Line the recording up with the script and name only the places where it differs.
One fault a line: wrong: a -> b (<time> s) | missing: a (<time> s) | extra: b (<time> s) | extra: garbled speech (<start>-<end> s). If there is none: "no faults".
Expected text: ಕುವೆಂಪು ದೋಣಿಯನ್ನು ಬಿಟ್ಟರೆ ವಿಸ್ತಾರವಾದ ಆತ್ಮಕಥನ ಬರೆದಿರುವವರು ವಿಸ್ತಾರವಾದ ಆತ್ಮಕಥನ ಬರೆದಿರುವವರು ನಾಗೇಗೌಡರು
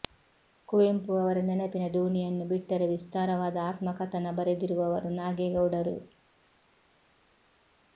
extra: ಅವರ ನೆನಪಿನ (1.2 s)
missing: ವಿಸ್ತಾರವಾದ ಆತ್ಮಕಥನ ಬರೆದಿರುವವರು (5.1 s)